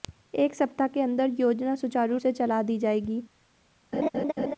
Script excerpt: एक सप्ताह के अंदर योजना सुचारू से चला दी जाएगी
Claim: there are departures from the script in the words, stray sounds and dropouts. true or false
true